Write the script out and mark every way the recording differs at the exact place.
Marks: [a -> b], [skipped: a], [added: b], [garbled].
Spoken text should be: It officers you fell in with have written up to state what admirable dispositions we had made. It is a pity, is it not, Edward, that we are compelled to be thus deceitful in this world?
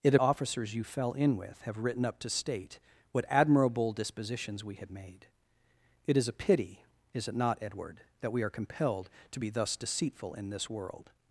It officers you fell in with have written up to state what admirable dispositions we had made. It is a pity, is it not, Edward, that we are compelled to be thus deceitful in this world?